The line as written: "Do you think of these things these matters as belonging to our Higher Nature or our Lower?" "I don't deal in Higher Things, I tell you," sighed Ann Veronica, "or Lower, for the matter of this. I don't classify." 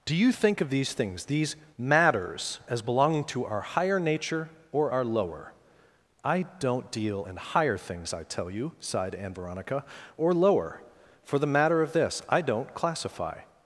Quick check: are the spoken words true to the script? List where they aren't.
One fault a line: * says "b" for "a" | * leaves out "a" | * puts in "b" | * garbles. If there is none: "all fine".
all fine